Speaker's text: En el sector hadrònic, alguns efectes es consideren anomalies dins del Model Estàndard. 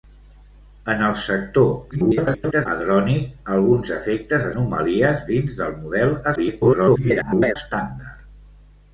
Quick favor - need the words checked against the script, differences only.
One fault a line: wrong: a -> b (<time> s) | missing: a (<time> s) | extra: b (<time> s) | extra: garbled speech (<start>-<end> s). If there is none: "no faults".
extra: garbled speech (1.9-2.7 s)
missing: es consideren (4.5 s)
extra: garbled speech (6.4-7.6 s)